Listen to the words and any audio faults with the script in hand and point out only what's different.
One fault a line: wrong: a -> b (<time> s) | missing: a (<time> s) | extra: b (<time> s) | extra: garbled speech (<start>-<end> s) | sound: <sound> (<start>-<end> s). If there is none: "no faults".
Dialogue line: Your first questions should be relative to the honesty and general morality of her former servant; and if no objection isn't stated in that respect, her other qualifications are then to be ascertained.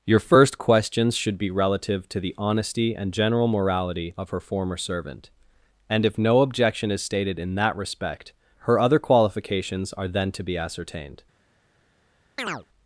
wrong: isn't -> is (6.9 s)
sound: chirp (12.4-12.7 s)